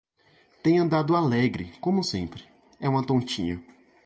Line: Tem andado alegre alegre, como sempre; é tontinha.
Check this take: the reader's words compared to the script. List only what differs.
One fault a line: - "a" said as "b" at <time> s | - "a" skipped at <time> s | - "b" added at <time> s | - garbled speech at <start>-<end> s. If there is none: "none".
- "alegre" skipped at 1.7 s
- "uma" added at 2.9 s